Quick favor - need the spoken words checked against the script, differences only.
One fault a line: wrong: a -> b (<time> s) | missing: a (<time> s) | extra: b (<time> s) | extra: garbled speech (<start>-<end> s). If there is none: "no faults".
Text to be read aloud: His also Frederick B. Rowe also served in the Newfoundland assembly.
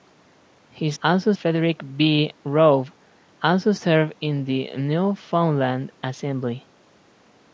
no faults